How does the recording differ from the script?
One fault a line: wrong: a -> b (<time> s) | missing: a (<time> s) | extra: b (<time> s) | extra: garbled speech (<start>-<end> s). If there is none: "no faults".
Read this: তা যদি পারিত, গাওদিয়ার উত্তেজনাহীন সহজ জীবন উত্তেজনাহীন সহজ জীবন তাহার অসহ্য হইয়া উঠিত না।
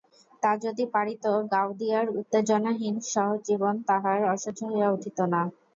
missing: উত্তেজনাহীন সহজ জীবন (3.8 s)